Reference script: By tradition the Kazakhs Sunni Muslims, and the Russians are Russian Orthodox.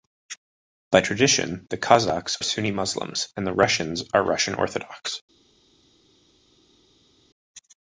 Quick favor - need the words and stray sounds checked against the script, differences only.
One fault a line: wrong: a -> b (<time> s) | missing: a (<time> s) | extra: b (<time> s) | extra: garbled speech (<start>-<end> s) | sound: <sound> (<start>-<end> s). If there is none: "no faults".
no faults